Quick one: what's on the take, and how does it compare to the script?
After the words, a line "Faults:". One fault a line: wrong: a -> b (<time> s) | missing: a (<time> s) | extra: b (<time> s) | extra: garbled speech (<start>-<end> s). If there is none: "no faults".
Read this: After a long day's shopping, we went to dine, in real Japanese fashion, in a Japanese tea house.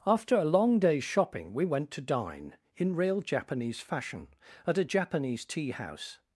After a long day's shopping, we went to dine, in real Japanese fashion, at a Japanese tea house.
Faults:
wrong: in -> at (4.7 s)